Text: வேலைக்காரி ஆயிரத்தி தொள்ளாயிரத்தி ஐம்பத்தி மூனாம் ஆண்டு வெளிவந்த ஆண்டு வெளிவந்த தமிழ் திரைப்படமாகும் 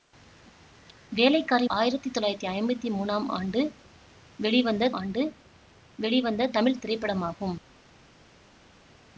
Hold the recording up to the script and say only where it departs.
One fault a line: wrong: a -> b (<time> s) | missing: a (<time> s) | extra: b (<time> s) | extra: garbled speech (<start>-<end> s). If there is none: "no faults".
no faults